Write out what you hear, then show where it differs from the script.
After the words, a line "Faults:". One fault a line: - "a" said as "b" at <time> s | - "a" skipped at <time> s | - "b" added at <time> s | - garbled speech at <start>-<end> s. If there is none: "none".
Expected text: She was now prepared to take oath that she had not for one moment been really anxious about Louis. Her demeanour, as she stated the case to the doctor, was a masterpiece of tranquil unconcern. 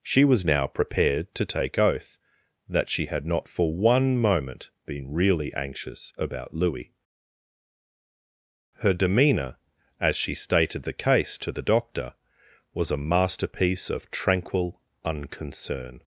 She was now prepared to take oath that she had not for one moment been really anxious about Louis. Her demeanour, as she stated the case to the doctor, was a masterpiece of tranquil unconcern.
Faults:
none